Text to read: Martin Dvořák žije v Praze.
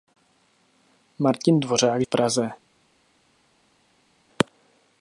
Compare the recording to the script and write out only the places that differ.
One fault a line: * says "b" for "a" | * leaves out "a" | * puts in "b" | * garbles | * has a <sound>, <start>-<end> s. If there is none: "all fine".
* leaves out "žije"